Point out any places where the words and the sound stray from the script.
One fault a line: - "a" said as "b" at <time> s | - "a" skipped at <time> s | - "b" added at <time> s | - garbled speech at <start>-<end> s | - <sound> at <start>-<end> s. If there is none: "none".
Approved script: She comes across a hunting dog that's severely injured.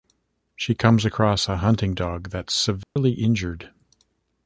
- dropout at 2.8-3.0 s